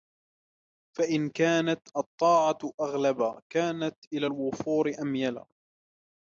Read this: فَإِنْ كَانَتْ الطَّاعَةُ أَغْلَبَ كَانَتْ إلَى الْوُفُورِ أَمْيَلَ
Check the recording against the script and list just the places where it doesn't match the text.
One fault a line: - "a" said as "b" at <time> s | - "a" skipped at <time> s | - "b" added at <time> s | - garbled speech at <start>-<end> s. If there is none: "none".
none